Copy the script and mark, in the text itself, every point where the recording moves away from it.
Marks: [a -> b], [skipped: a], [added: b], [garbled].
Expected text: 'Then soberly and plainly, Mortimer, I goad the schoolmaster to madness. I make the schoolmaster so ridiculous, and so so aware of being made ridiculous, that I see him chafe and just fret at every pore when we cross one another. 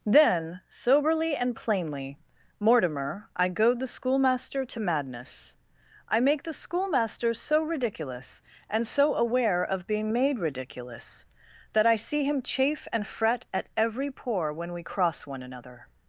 'Then soberly and plainly, Mortimer, I goad the schoolmaster to madness. I make the schoolmaster so ridiculous, and so [skipped: so] aware of being made ridiculous, that I see him chafe and [skipped: just] fret at every pore when we cross one another.